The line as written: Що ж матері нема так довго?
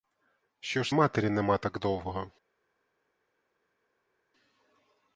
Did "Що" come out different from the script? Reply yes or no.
no